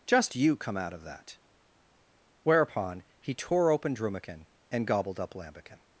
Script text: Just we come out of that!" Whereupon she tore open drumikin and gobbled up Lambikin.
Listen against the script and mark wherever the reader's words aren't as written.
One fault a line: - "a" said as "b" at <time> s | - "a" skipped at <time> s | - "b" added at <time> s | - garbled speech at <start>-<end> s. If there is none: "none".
- "we" said as "you" at 0.3 s
- "she" said as "he" at 3.2 s